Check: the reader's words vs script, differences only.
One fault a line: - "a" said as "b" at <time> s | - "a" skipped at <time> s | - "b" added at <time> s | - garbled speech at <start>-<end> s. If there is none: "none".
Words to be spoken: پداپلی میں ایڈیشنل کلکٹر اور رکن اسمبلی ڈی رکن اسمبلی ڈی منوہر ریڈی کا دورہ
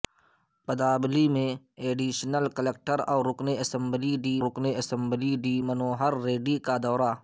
none